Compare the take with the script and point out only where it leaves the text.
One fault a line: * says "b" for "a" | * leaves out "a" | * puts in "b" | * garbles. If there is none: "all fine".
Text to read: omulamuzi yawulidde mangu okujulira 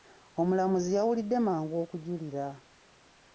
all fine